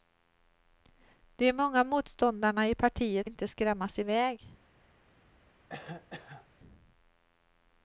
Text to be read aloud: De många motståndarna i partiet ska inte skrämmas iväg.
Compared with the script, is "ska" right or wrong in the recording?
wrong